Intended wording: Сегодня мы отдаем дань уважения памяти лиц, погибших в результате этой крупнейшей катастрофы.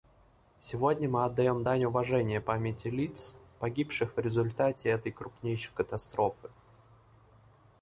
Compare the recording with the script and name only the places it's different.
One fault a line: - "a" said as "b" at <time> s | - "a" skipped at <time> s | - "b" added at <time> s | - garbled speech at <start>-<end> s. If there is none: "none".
none